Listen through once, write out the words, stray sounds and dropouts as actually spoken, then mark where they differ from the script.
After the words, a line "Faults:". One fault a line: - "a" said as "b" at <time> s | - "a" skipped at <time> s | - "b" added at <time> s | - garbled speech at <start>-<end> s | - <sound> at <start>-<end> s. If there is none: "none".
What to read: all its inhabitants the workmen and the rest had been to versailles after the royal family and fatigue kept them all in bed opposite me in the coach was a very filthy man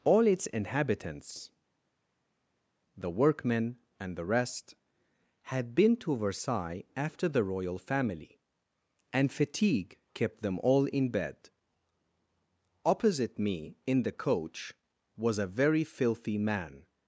all its inhabitants the workmen and the rest had been to versailles after the royal family and fatigue kept them all in bed opposite me in the coach was a very filthy man
Faults:
none